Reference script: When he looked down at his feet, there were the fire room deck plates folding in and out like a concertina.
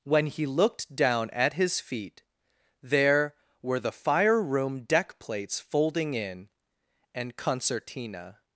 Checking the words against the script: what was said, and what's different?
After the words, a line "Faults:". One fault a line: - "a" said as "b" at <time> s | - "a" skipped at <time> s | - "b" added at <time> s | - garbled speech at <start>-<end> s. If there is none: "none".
When he looked down at his feet, there were the fire room deck plates folding in and concertina.
Faults:
- "out like a" skipped at 7.3 s